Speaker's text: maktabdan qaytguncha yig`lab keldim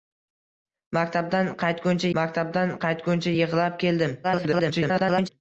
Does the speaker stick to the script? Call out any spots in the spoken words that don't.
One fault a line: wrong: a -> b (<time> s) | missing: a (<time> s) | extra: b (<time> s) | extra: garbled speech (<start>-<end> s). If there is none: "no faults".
extra: maktabdan qaytguncha (2.2 s)
extra: garbled speech (4.2-5.3 s)